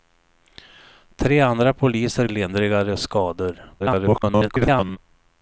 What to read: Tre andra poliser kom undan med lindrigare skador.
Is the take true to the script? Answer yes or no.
no